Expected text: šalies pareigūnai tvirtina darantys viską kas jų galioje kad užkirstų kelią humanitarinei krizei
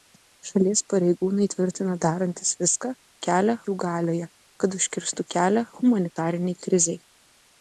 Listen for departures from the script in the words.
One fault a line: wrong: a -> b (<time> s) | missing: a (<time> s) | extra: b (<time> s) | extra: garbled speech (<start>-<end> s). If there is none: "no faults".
wrong: kas -> kelią (3.3 s)